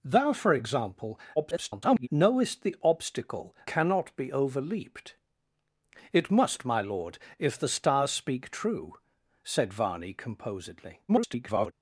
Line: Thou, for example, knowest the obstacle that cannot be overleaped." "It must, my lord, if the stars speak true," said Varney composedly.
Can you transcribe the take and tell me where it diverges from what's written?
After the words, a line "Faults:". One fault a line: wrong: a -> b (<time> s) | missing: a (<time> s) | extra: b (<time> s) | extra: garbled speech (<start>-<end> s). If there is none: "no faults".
Thou, for example, [garbled] knowest the obstacle cannot be overleaped." "It must, my lord, if the stars speak true," said Varney composedly. [garbled]
Faults:
extra: garbled speech (1.4-2.1 s)
missing: that (3.5 s)
extra: garbled speech (11.1-11.7 s)